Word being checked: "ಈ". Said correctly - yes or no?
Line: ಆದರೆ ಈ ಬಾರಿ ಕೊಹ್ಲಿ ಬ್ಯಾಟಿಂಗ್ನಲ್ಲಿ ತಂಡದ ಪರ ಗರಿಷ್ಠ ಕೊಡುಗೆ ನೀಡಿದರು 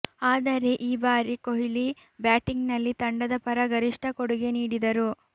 yes